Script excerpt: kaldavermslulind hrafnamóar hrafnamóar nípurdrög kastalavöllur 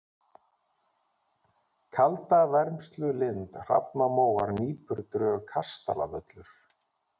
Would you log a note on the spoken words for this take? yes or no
yes